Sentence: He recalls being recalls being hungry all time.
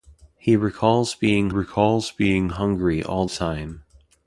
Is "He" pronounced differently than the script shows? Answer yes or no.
no